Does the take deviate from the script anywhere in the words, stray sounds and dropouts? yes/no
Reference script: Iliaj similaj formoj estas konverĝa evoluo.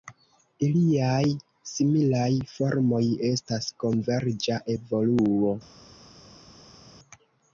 no